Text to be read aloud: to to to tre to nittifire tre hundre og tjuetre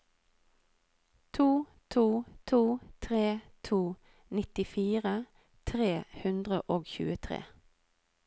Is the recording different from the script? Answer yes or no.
no